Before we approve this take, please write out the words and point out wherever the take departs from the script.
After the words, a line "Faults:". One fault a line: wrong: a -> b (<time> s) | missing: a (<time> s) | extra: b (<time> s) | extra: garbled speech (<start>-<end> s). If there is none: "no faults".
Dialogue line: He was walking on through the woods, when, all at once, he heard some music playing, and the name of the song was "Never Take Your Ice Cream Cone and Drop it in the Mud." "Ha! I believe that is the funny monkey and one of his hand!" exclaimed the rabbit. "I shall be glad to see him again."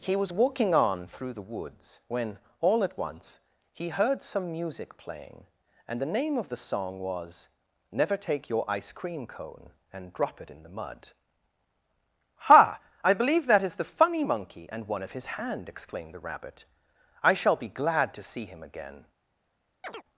He was walking on through the woods, when, all at once, he heard some music playing, and the name of the song was "Never Take Your Ice Cream Cone and Drop it in the Mud." "Ha! I believe that is the funny monkey and one of his hand!" exclaimed the rabbit. "I shall be glad to see him again."
Faults:
no faults